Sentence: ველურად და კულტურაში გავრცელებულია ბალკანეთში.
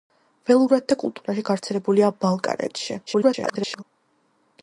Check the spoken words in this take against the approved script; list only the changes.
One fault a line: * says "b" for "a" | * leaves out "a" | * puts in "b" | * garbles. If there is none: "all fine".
* garbles